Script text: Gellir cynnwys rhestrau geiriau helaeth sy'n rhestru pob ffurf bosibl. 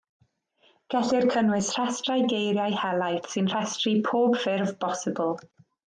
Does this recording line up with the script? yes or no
yes